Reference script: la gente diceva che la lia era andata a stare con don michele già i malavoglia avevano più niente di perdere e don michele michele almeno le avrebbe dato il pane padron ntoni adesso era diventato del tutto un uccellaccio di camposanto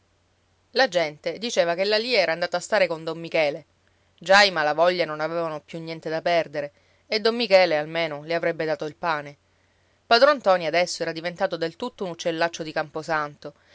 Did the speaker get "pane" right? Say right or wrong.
right